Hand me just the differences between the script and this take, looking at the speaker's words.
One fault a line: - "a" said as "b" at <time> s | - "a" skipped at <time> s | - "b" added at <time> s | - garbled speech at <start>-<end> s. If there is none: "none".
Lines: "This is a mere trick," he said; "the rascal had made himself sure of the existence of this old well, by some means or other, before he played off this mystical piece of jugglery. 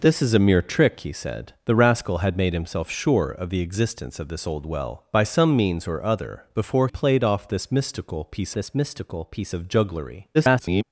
- "he" skipped at 6.9 s
- "this mystical piece" added at 8.5 s
- garbled speech at 10.3-10.8 s